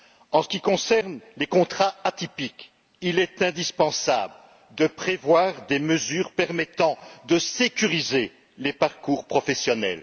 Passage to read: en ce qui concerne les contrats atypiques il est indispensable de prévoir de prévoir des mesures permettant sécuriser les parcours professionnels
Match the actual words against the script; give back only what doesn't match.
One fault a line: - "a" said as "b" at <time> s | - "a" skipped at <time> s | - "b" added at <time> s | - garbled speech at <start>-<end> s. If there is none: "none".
- "de prévoir" skipped at 5.7 s
- "de" added at 7.3 s